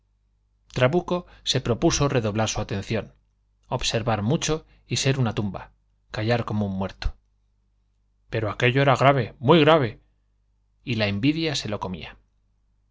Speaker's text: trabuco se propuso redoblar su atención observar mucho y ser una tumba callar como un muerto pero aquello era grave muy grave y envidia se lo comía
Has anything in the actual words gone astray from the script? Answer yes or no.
yes